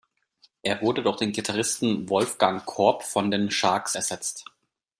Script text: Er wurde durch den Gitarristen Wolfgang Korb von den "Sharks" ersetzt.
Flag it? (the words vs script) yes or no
no